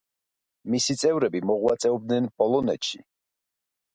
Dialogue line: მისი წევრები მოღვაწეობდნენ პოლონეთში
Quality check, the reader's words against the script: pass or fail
pass